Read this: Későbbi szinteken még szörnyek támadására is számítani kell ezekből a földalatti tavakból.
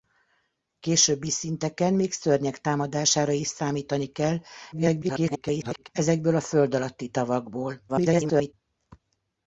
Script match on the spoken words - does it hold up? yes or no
no